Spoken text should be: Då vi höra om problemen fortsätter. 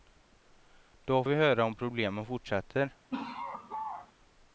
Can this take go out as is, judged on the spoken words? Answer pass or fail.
pass